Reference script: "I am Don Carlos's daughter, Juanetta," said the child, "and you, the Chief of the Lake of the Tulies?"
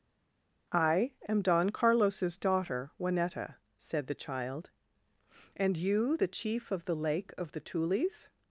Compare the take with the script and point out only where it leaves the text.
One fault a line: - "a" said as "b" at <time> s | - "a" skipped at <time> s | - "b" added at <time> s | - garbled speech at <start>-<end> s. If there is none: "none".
none